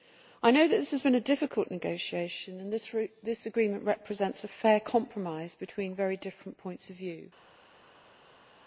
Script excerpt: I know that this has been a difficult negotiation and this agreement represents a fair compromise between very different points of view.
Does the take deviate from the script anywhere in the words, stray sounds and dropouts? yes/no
no